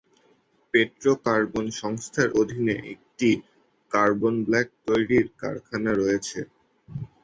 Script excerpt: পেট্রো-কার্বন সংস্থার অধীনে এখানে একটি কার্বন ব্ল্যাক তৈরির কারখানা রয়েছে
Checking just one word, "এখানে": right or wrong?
wrong